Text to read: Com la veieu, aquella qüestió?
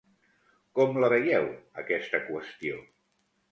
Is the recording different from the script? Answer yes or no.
yes